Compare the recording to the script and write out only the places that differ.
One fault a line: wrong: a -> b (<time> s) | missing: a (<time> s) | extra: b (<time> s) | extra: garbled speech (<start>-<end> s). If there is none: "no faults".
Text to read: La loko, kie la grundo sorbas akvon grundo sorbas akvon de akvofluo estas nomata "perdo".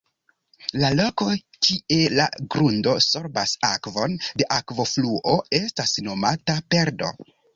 missing: grundo sorbas akvon (4.2 s)